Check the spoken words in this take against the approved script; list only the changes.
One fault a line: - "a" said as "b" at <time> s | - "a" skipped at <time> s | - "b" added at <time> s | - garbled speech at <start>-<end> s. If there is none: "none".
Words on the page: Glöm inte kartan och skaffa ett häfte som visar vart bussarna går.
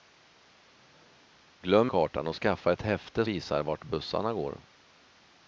- "inte" skipped at 1.9 s
- "som" skipped at 3.2 s